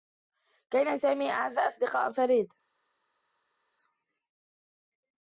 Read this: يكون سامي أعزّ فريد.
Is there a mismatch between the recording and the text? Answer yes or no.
yes